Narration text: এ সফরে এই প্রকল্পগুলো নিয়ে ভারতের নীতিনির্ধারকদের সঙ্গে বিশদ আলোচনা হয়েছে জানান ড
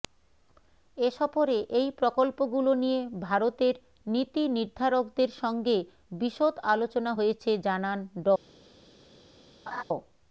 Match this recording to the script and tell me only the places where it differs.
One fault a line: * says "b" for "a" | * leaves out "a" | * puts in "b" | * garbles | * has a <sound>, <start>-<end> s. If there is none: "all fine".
* has a laugh, 9.7-9.8 s